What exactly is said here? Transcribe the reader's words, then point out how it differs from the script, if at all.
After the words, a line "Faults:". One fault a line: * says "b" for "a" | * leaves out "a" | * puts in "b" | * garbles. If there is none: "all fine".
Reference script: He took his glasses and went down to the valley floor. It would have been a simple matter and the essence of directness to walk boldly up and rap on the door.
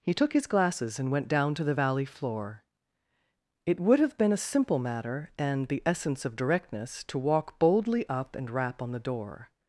He took his glasses and went down to the valley floor. It would have been a simple matter and the essence of directness to walk boldly up and rap on the door.
Faults:
all fine